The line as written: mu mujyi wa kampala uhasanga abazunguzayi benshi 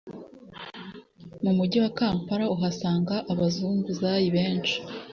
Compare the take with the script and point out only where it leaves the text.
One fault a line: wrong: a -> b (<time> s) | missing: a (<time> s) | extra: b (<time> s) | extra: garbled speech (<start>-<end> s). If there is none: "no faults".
no faults